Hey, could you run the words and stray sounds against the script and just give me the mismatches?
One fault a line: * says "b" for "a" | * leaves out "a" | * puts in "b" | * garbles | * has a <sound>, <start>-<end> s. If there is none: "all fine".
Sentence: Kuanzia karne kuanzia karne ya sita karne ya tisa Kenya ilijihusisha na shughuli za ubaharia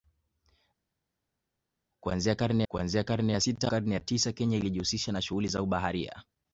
all fine